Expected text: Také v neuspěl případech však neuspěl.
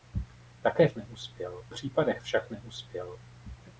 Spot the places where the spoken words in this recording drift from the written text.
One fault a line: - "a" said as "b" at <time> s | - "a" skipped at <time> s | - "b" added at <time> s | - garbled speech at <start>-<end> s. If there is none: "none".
none